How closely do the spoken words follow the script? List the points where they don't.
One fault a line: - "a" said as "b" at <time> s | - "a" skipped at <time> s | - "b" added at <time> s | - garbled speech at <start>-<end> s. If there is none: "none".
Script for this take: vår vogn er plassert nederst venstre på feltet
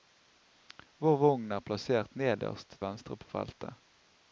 none